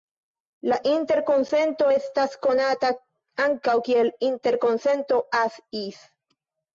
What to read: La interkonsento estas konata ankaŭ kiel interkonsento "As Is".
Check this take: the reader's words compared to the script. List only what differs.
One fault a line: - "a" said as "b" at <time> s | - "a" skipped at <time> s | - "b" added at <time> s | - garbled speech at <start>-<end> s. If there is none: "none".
none